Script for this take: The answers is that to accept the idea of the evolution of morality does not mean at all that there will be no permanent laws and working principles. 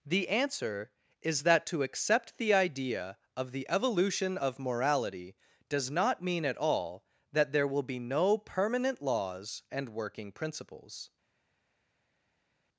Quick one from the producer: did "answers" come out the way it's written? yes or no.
no